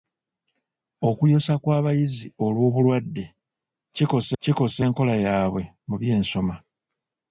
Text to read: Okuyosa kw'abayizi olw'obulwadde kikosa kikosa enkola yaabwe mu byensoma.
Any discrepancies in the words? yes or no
no